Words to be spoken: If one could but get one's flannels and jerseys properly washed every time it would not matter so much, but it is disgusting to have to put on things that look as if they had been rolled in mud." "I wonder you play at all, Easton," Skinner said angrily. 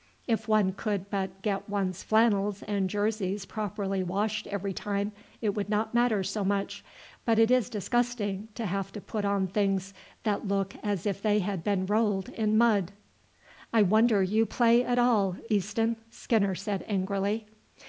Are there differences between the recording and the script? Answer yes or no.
no